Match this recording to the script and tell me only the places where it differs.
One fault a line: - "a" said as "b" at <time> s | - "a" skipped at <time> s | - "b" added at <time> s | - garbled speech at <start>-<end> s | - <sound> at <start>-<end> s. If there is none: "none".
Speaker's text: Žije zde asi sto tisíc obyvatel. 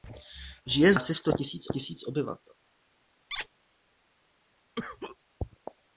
- "zde" skipped at 0.9 s
- "tisíc" added at 1.7 s
- squeak at 3.3-3.5 s
- cough at 4.8-5.2 s